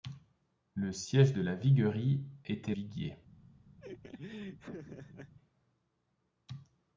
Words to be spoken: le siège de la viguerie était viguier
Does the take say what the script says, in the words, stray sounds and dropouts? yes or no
no